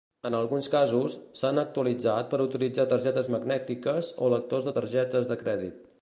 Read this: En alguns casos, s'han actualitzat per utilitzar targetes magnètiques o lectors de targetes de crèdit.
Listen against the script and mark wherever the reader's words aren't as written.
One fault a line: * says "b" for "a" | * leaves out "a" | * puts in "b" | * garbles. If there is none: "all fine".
all fine